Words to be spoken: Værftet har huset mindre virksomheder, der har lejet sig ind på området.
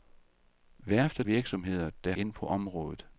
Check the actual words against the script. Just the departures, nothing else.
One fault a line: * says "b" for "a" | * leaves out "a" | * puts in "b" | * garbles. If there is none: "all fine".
* leaves out "har huset mindre"
* leaves out "har lejet sig"